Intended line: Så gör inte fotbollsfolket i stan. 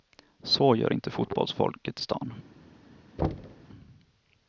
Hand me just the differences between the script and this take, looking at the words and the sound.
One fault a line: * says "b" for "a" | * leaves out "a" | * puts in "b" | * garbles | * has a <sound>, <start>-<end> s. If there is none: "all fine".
* has a thud, 3.2-3.6 s